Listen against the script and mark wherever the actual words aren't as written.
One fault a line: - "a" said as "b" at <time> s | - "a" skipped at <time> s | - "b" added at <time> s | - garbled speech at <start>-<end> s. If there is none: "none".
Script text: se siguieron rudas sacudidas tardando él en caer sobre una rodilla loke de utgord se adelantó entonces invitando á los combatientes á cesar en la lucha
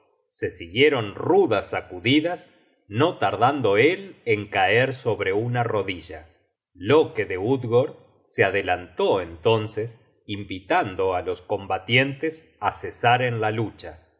- "no" added at 2.9 s